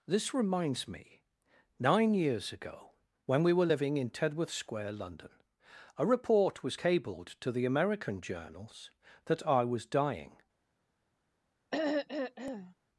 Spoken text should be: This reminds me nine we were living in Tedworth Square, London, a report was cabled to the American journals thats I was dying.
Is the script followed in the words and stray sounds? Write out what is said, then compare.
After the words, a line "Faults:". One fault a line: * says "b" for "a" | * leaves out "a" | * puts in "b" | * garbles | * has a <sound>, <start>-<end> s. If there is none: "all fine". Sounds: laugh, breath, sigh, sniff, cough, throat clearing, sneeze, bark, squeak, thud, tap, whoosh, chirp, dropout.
This reminds me nine years ago, when we were living in Tedworth Square, London, a report was cabled to the American journals that I was dying.
Faults:
* puts in "years ago when"
* says "that" for "thats"
* has a throat clearing, 11.7-12.7 s